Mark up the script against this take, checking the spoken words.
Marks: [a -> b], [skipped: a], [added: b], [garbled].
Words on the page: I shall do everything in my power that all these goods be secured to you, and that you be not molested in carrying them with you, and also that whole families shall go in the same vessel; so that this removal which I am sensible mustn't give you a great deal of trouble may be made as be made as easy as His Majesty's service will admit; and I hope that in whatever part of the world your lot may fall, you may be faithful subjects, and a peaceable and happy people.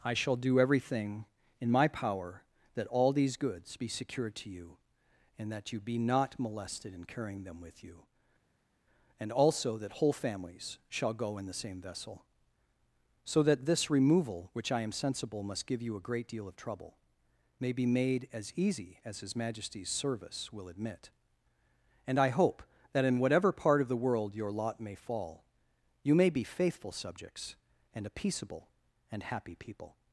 I shall do everything in my power that all these goods be secured to you, and that you be not molested in carrying them with you, and also that whole families shall go in the same vessel; so that this removal which I am sensible [mustn't -> must] give you a great deal of trouble may be made as [skipped: be made as] easy as His Majesty's service will admit; and I hope that in whatever part of the world your lot may fall, you may be faithful subjects, and a peaceable and happy people.